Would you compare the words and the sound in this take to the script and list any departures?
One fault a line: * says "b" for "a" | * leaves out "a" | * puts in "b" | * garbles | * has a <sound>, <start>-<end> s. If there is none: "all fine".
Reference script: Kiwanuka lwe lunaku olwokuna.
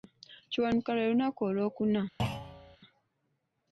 * has a thud, 2.2-2.8 s